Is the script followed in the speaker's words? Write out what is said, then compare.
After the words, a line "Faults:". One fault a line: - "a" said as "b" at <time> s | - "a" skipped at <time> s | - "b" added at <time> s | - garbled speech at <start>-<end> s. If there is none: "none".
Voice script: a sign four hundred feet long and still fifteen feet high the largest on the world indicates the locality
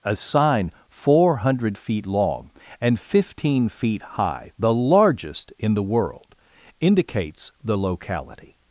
a sign four hundred feet long and fifteen feet high the largest in the world indicates the locality
Faults:
- "still" skipped at 3.0 s
- "on" said as "in" at 5.6 s